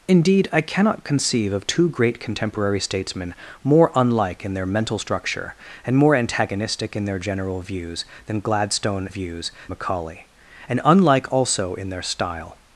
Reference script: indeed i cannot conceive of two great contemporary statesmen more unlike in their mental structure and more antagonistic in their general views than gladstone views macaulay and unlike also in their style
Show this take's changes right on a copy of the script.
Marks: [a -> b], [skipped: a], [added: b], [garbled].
indeed i cannot conceive of two great contemporary statesmen more unlike in their mental structure and more antagonistic in their general views than gladstone views macaulay and unlike also in their style